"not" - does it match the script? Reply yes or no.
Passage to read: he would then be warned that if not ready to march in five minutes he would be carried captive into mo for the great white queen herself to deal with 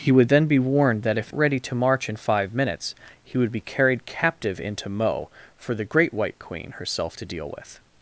no